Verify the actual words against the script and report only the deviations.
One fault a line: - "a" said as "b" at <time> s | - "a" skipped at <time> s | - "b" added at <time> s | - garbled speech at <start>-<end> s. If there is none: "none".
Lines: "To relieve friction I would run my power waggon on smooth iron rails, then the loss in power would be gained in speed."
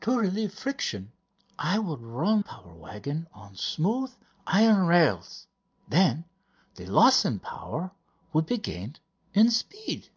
- "my" skipped at 2.4 s